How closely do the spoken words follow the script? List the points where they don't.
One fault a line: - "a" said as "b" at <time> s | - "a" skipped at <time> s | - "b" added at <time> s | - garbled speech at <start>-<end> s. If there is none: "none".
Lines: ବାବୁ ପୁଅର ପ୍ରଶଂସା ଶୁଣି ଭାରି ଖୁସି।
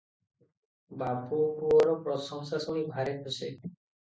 none